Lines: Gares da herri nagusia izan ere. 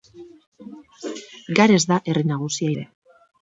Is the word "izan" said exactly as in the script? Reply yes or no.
no